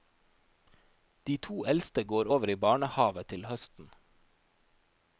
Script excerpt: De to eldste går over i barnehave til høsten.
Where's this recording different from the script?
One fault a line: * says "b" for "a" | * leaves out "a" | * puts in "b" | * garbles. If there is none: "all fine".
all fine